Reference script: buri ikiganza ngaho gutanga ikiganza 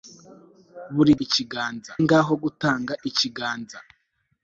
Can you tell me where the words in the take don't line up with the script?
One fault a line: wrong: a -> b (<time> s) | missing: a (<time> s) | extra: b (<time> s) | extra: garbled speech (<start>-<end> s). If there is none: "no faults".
no faults